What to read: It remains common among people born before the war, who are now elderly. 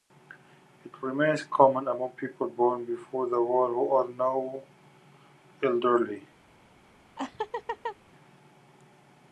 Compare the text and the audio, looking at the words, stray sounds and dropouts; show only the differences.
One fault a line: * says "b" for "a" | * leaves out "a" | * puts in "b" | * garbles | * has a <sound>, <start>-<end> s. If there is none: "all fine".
* has a laugh, 7.2-8.0 s